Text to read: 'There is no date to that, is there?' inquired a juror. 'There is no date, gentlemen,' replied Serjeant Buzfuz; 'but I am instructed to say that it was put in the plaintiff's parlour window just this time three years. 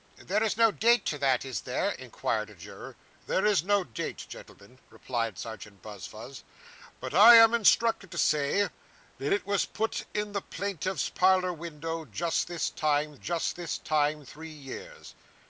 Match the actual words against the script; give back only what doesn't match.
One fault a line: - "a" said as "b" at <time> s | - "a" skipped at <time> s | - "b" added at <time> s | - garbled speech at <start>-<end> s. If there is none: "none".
- "just this time" added at 13.1 s